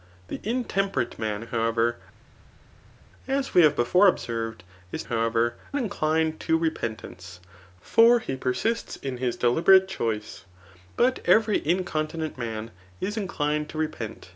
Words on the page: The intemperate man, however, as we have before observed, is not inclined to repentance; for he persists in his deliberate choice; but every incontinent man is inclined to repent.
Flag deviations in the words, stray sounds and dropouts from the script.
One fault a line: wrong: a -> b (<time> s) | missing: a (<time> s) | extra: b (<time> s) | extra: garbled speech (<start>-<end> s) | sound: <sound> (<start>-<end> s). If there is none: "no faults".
wrong: not -> however (5.0 s)